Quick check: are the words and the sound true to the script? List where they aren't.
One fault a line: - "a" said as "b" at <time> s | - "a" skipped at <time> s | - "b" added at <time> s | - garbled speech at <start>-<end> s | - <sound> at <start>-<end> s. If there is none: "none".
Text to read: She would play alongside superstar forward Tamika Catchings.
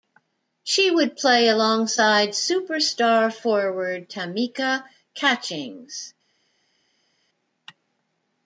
none